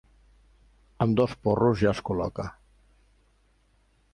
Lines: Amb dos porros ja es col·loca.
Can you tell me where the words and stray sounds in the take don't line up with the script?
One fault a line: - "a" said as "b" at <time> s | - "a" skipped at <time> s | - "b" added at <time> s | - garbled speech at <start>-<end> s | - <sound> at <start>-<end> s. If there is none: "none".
none